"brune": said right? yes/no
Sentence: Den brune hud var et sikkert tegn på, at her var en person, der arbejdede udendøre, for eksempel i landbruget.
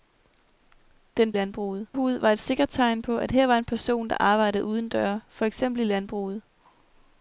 no